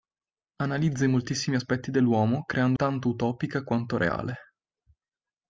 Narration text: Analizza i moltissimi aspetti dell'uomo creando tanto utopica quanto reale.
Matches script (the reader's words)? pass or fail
pass